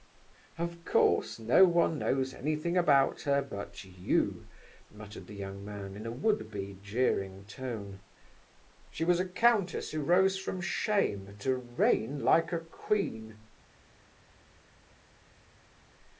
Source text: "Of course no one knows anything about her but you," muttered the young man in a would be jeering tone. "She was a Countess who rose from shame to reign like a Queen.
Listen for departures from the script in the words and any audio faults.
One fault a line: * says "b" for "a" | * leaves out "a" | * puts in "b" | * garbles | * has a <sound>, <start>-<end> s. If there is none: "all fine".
all fine